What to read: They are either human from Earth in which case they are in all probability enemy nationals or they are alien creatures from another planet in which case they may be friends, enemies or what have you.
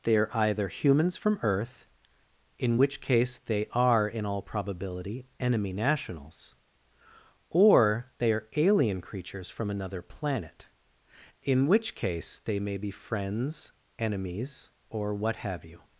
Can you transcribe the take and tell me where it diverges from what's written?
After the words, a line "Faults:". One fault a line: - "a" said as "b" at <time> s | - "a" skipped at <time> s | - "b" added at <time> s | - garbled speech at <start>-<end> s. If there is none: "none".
They are either humans from Earth in which case they are in all probability enemy nationals or they are alien creatures from another planet in which case they may be friends, enemies or what have you.
Faults:
- "human" said as "humans" at 0.7 s